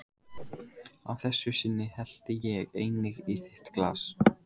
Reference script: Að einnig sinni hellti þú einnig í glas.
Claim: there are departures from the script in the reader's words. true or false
true